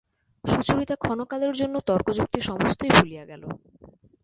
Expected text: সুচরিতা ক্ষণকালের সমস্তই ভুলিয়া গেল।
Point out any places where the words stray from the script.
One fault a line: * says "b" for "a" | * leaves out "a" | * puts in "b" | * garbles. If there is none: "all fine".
* puts in "জন্য তর্কযুক্তি"